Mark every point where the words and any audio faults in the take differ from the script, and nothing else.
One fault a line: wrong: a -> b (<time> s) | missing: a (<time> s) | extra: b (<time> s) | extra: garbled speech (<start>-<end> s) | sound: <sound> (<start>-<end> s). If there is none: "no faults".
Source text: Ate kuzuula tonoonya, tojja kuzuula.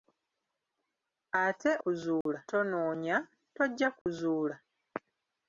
sound: dropout (2.2-2.3 s)
sound: dropout (4.0-4.1 s)